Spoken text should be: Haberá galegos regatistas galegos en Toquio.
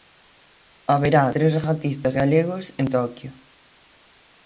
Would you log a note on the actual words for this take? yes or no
yes